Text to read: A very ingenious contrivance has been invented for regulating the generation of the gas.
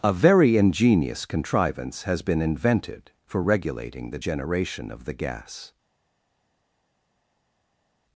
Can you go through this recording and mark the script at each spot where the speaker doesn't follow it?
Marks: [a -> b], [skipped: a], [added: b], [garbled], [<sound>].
A very ingenious contrivance has been invented for regulating the generation of the gas.